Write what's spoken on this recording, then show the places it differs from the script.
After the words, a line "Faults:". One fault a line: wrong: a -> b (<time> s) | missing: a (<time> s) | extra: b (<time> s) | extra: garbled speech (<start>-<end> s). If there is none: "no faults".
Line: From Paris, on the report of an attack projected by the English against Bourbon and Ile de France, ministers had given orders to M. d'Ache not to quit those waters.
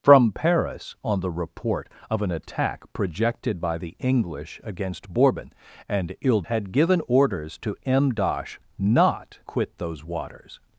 From Paris, on the report of an attack projected by the English against Bourbon and Ile had given orders to M. d'Ache not quit those waters.
Faults:
missing: de France ministers (6.4 s)
missing: to (9.4 s)